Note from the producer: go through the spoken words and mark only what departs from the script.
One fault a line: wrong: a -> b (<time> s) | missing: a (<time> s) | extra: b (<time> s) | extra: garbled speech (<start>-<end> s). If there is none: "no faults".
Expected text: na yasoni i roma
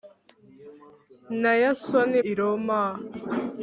no faults